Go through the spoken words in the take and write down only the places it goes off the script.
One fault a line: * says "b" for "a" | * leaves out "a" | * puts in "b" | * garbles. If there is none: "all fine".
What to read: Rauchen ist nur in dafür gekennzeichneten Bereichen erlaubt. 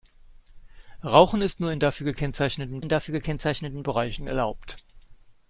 * puts in "in dafür gekennzeichneten"